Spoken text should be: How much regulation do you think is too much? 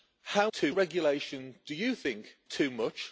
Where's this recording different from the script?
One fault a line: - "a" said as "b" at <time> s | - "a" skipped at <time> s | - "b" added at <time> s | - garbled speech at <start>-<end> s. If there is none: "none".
- "much" said as "too" at 0.5 s
- "is" skipped at 2.4 s